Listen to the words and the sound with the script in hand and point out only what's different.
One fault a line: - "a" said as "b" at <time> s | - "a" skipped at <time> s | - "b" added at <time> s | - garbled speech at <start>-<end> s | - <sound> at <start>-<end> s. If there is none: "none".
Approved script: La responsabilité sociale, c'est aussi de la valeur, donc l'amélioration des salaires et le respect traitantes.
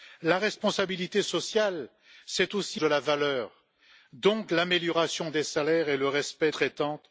none